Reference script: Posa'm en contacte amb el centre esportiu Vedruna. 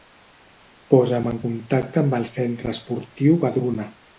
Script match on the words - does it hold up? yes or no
yes